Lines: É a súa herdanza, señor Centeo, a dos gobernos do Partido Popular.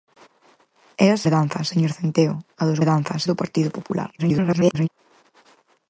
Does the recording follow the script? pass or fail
fail